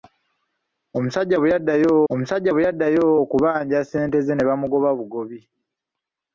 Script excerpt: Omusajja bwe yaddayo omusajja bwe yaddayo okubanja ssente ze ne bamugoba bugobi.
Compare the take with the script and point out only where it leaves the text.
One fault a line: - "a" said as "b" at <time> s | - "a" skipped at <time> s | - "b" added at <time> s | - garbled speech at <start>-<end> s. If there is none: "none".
none